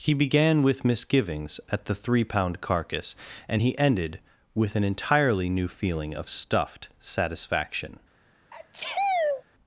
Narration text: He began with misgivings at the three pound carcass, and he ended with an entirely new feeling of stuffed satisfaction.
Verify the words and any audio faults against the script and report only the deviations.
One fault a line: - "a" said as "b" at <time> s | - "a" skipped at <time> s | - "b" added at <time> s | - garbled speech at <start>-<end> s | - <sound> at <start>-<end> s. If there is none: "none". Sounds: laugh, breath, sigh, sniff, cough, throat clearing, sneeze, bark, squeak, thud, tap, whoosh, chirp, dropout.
- sneeze at 8.5-9.4 s